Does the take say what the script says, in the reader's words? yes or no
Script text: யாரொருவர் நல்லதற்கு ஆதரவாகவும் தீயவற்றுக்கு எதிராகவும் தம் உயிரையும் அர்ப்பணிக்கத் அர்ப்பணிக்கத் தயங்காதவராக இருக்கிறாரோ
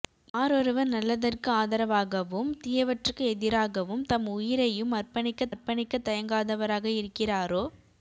yes